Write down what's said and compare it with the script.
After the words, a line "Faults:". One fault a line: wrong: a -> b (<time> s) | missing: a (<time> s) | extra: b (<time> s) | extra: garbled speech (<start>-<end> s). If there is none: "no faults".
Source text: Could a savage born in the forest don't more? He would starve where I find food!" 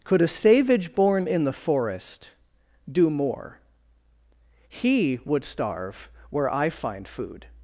Could a savage born in the forest do more? He would starve where I find food!"
Faults:
wrong: don't -> do (2.9 s)